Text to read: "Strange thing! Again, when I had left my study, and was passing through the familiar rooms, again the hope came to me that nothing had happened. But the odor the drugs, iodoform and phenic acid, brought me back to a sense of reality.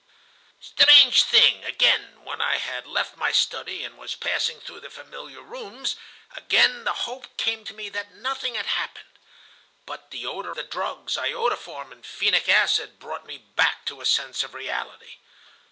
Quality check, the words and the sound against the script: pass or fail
pass